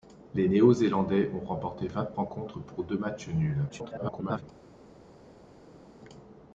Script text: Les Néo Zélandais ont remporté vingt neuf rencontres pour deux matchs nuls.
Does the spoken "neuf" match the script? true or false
false